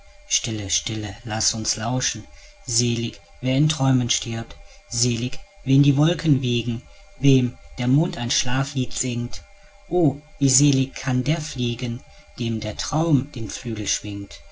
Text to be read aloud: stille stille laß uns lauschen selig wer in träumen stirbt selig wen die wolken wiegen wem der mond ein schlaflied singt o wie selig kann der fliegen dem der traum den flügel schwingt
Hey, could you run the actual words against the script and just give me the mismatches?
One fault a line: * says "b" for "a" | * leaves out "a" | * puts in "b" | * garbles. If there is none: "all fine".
all fine